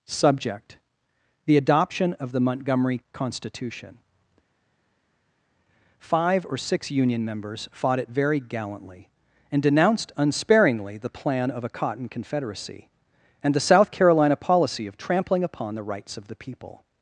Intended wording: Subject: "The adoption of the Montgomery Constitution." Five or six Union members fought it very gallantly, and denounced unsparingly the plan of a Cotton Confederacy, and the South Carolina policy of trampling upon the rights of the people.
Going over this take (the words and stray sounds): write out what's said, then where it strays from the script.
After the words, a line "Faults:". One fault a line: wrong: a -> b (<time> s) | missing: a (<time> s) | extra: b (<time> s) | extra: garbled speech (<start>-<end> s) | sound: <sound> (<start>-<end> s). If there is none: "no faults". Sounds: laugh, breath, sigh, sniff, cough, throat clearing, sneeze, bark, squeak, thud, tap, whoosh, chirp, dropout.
Subject: "The adoption of the Montgomery Constitution." Five or six Union members fought it very gallantly, and denounced unsparingly the plan of a Cotton Confederacy, and the South Carolina policy of trampling upon the rights of the people.
Faults:
no faults